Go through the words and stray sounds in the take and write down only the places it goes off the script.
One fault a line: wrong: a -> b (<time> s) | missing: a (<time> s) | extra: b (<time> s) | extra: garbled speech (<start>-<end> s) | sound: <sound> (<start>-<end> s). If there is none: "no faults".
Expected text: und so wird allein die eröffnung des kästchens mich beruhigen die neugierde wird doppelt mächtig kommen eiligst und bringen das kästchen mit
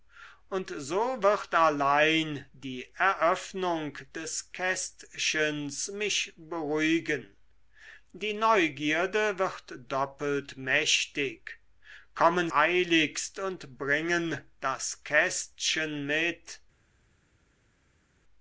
no faults